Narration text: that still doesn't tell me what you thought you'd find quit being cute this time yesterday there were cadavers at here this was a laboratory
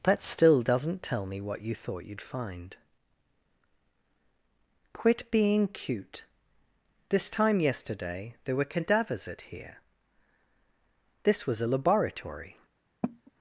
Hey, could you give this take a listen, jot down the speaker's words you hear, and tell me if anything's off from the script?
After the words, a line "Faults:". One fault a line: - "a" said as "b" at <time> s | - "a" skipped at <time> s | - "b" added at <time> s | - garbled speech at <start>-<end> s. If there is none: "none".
that still doesn't tell me what you thought you'd find quit being cute this time yesterday there were cadavers at here this was a laboratory
Faults:
none